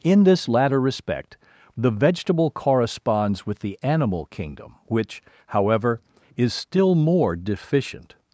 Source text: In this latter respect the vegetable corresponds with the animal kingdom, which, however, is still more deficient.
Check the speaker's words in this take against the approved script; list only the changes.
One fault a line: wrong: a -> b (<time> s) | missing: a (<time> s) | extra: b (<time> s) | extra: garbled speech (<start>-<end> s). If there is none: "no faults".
no faults